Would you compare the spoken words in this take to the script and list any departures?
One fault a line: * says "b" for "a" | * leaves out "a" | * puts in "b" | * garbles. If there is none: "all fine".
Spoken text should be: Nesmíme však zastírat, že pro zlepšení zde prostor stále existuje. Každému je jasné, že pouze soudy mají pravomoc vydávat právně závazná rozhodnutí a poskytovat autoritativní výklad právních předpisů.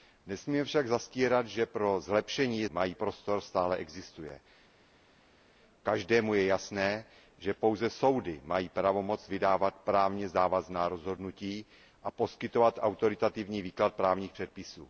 * says "mají" for "zde"